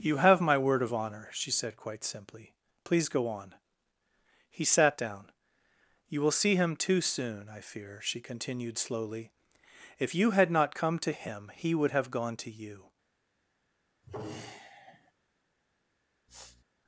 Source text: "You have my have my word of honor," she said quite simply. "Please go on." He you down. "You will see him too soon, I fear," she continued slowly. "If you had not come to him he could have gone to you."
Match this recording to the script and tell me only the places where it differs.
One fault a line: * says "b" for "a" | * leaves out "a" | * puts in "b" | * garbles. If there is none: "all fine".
* leaves out "have my"
* says "sat" for "you"
* says "would" for "could"